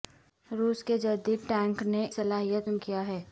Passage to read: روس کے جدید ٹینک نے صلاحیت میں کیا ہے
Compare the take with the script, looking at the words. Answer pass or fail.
pass